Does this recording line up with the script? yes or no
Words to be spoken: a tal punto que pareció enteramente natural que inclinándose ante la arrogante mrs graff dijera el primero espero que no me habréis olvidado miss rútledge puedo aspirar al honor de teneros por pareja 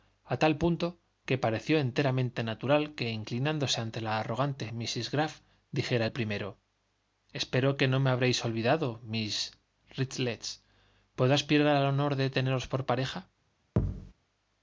yes